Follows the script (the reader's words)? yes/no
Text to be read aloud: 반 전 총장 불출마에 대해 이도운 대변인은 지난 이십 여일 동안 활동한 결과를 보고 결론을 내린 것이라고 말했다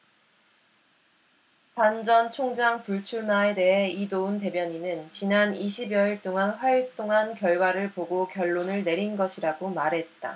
yes